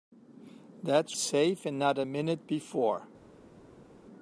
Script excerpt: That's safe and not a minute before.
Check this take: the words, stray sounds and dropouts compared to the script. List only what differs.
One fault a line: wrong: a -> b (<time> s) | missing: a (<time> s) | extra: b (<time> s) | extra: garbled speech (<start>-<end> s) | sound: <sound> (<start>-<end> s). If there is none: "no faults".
no faults